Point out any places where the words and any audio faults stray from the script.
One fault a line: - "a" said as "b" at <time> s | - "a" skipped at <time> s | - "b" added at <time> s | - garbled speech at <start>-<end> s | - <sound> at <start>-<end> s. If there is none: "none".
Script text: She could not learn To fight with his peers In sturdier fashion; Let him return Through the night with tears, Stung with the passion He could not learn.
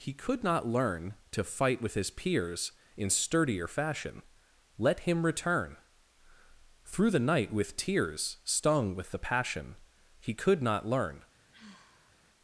- "She" said as "He" at 0.0 s
- sigh at 11.5-12.1 s